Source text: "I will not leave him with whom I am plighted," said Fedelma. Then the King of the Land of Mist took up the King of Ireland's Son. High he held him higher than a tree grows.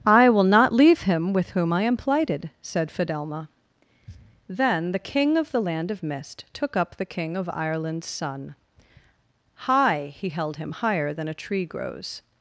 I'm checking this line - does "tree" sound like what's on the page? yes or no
yes